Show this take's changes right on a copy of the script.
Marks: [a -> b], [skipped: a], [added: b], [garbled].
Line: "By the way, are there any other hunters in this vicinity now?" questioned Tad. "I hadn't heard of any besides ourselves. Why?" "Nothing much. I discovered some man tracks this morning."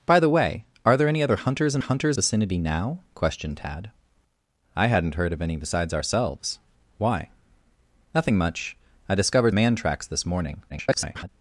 "By the way, are there any other hunters in [this -> hunters] vicinity now?" questioned Tad. "I hadn't heard of any besides ourselves. Why?" "Nothing much. I discovered [skipped: some] man tracks this morning." [garbled]